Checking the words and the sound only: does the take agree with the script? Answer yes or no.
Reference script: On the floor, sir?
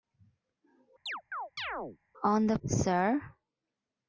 no